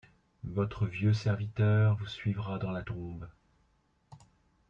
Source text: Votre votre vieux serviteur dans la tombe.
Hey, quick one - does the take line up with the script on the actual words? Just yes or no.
no